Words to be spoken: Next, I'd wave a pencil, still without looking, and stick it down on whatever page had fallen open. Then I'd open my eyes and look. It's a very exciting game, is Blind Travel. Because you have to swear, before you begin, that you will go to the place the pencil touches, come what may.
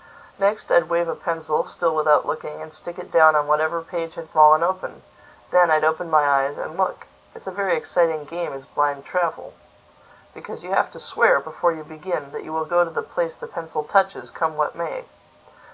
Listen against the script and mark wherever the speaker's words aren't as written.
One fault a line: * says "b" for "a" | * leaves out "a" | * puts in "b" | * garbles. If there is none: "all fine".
all fine